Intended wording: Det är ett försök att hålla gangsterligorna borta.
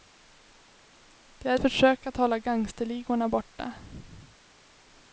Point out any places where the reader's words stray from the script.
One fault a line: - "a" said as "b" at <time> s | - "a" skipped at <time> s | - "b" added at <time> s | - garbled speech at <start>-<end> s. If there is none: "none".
- "ett" skipped at 1.6 s